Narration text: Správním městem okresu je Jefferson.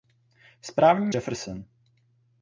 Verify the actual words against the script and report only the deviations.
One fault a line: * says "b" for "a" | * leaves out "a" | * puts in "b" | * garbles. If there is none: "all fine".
* leaves out "městem okresu je"